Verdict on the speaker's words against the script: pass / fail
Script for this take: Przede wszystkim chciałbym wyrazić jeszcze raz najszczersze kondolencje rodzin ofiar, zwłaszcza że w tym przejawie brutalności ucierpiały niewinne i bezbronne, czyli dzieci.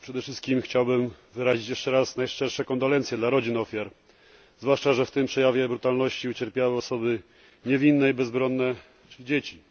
fail